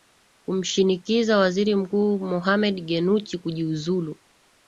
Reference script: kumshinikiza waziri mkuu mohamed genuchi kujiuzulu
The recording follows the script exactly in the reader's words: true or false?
true